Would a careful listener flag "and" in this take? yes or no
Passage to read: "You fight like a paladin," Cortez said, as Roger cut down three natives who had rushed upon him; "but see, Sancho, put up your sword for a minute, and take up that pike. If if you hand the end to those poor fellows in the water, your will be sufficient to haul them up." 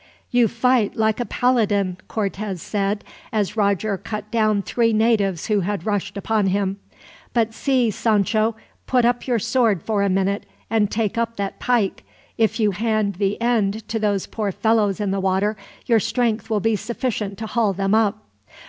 no